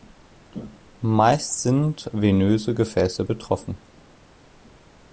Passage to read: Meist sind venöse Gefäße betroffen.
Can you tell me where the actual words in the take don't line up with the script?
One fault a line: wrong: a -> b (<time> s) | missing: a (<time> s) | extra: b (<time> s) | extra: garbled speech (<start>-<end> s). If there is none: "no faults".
no faults